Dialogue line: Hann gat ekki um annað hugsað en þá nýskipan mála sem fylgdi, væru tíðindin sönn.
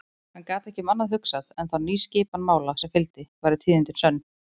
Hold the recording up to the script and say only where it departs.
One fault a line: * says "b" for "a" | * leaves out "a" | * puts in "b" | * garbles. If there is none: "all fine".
all fine